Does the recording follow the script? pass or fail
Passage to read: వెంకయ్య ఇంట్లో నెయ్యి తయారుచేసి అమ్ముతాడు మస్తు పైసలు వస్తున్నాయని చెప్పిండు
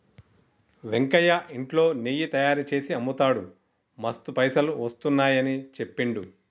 pass